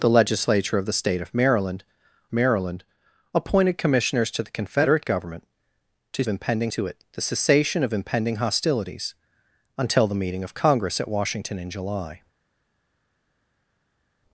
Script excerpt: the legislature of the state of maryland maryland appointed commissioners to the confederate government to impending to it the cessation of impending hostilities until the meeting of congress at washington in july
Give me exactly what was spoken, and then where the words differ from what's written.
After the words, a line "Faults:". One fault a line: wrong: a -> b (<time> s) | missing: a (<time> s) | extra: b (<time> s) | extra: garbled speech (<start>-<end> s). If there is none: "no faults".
the legislature of the state of maryland maryland appointed commissioners to the confederate government to impending to it the cessation of impending hostilities until the meeting of congress at washington in july
Faults:
no faults